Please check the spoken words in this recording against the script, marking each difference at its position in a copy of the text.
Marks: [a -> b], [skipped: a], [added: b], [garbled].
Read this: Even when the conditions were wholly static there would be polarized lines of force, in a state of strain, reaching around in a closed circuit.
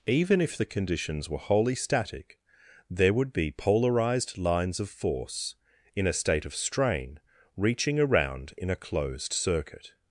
Even [when -> if] the conditions were wholly static there would be polarized lines of force, in a state of strain, reaching around in a closed circuit.